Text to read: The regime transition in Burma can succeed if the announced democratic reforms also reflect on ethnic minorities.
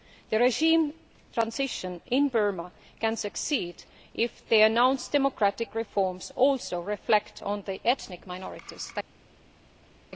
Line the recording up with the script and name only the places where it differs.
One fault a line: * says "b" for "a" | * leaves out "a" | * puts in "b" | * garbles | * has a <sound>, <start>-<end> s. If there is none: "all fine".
* puts in "the"